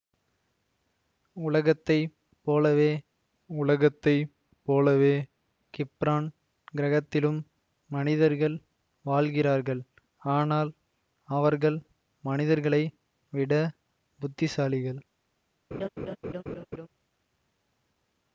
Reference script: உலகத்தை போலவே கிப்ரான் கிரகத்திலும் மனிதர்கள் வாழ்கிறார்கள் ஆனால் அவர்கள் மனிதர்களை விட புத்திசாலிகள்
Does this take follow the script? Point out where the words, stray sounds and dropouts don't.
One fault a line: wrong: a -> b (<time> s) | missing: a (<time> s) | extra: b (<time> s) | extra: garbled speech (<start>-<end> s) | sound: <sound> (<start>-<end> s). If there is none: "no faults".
extra: உலகத்தை போலவே (3.5 s)
sound: laugh (15.7-16.9 s)